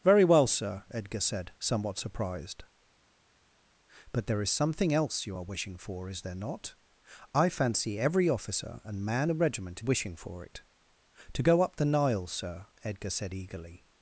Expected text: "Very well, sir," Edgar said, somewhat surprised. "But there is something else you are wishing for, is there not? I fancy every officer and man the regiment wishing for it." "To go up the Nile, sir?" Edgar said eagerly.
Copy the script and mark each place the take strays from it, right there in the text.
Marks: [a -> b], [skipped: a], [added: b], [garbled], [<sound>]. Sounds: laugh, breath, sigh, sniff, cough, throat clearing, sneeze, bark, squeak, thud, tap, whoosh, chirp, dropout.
"Very well, sir," Edgar said, somewhat surprised. "But there is something else you are wishing for, is there not? I fancy every officer and man the regiment wishing for it." "To go up the Nile, sir?" Edgar said eagerly.